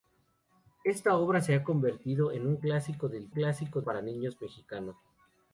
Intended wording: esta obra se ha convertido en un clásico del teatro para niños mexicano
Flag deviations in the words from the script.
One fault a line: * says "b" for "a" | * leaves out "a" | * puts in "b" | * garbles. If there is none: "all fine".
* says "clásico" for "teatro"